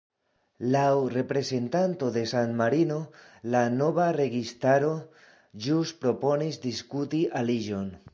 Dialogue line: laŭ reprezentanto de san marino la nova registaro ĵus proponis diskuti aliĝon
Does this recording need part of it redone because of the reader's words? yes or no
no